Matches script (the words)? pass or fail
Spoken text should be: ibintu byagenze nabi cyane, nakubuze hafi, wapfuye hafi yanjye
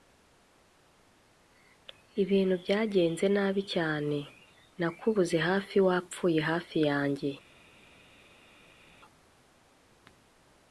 pass